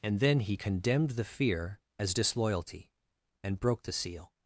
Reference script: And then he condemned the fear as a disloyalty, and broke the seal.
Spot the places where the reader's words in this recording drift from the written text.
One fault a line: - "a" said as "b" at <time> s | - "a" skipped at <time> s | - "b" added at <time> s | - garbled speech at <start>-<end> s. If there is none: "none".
- "a" skipped at 2.1 s